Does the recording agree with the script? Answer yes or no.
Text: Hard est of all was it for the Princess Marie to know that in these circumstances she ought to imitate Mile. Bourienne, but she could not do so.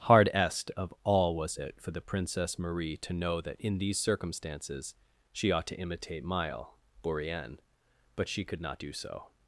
yes